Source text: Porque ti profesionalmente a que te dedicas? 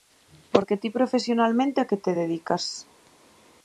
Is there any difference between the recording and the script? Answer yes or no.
no